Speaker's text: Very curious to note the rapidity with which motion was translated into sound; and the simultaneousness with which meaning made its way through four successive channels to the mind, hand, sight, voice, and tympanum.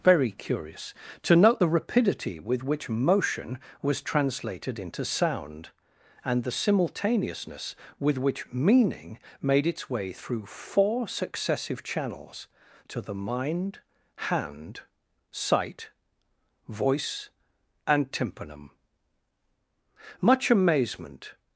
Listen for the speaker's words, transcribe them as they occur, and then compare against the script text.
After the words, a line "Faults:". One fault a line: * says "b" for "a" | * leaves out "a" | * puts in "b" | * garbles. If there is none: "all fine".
Very curious to note the rapidity with which motion was translated into sound; and the simultaneousness with which meaning made its way through four successive channels to the mind, hand, sight, voice, and tympanum. Much amazement
Faults:
* puts in "Much amazement"